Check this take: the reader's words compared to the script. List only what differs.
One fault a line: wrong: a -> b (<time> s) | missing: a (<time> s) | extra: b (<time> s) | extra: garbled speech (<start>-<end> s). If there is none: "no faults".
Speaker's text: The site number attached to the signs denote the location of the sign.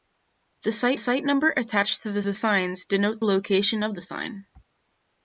extra: site (1.0 s)
extra: the (2.2 s)
missing: the (3.2 s)